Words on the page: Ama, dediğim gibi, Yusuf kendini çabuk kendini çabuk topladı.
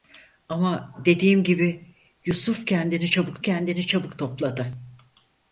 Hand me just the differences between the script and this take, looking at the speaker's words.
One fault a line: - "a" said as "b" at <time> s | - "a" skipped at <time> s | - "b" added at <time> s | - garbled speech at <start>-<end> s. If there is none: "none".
none